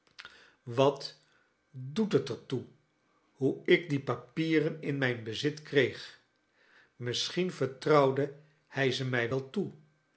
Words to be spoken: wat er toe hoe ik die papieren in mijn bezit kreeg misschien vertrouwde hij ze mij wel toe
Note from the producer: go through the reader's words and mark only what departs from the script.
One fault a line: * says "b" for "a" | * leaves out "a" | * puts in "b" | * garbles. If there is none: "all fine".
* puts in "doet het"